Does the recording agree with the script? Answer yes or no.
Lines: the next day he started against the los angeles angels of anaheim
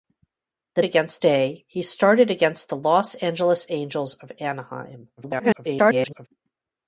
no